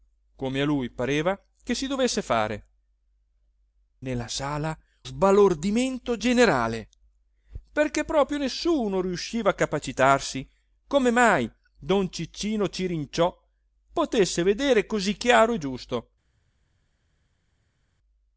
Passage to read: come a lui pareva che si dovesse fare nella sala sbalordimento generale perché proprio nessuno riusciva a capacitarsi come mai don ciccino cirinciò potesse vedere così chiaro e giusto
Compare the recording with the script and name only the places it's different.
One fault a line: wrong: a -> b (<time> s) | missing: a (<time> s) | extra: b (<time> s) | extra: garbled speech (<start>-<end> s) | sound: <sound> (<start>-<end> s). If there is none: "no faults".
no faults